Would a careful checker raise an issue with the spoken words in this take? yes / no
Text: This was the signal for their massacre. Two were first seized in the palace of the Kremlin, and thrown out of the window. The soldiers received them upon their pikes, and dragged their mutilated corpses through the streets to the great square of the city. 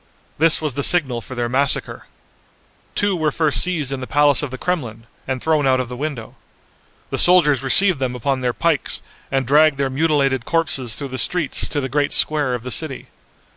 no